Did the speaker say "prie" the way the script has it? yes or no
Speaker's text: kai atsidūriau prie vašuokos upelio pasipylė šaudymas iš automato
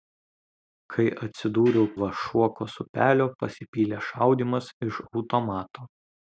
no